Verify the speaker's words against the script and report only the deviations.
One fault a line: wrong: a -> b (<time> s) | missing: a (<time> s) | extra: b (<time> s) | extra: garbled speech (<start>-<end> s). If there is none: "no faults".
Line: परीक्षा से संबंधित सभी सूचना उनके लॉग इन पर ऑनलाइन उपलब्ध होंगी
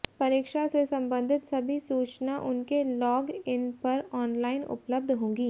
no faults